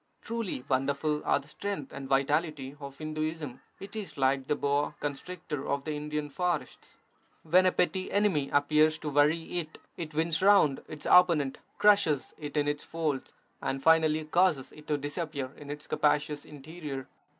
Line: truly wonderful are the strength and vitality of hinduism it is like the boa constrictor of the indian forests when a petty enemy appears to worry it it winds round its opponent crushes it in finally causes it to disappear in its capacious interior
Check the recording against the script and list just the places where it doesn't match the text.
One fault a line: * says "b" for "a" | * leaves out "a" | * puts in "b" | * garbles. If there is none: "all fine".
* puts in "its folds and"